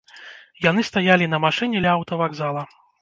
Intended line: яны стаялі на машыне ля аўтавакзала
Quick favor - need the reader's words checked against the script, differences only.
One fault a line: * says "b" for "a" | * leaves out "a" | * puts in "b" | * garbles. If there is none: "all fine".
all fine